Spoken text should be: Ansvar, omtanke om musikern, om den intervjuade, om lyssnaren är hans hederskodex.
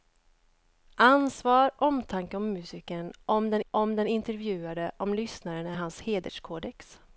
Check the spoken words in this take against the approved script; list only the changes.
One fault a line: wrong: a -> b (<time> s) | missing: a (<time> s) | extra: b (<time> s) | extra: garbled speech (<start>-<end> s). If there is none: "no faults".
extra: om den (3.7 s)